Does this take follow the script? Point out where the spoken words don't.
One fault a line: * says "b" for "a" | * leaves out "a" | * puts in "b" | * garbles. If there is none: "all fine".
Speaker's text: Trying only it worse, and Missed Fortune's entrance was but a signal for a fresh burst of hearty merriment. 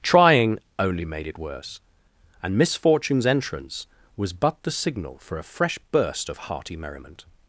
* puts in "made"
* says "Miss" for "Missed"
* says "the" for "a"